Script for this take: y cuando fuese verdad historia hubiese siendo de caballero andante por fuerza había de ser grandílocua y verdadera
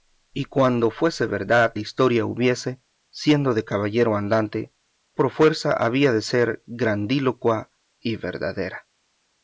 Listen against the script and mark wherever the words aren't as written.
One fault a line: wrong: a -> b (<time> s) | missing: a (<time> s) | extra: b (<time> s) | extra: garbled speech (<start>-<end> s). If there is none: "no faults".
no faults